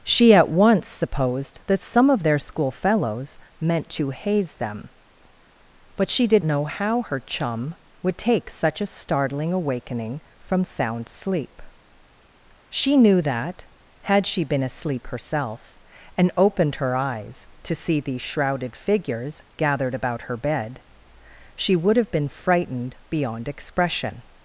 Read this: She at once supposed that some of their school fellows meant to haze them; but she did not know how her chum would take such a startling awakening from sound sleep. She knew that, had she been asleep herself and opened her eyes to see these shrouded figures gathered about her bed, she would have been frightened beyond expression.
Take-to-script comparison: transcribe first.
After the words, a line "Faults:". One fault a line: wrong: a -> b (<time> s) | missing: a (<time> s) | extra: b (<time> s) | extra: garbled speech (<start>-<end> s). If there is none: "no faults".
She at once supposed that some of their school fellows meant to haze them; but she did know how her chum would take such a startling awakening from sound sleep. She knew that, had she been asleep herself and opened her eyes to see these shrouded figures gathered about her bed, she would have been frightened beyond expression.
Faults:
missing: not (6.4 s)